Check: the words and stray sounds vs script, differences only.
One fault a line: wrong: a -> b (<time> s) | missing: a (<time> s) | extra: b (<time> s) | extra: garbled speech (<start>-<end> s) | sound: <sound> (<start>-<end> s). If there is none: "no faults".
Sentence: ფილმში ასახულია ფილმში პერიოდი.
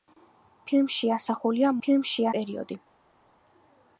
no faults